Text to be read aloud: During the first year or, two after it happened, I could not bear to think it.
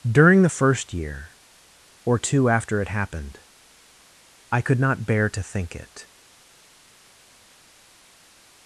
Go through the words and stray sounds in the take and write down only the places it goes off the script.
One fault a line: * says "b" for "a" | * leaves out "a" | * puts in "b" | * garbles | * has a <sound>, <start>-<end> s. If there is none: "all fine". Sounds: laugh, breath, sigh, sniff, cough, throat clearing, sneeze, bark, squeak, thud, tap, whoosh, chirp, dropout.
all fine